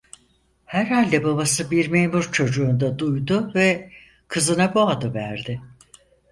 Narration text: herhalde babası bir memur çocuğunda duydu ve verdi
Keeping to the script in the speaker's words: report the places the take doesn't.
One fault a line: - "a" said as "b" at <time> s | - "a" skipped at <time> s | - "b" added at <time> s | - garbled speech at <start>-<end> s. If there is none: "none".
- "kızına bu adı" added at 4.3 s